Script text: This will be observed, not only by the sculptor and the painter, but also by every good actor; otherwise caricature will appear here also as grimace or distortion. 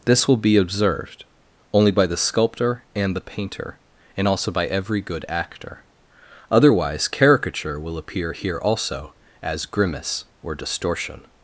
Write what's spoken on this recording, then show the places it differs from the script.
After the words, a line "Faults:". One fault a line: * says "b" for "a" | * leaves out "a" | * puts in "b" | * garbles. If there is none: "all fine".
This will be observed, only by the sculptor and the painter, and also by every good actor; otherwise caricature will appear here also as grimace or distortion.
Faults:
* leaves out "not"
* says "and" for "but"